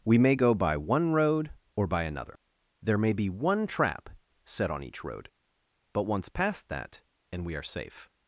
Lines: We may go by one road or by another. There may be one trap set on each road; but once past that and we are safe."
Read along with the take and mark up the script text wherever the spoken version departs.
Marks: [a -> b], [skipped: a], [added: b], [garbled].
We may go by one road or by another. There may be one trap set on each road; but once past that and we are safe."